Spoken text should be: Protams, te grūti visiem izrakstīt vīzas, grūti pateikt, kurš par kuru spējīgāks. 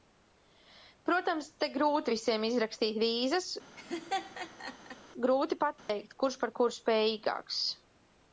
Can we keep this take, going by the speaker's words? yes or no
yes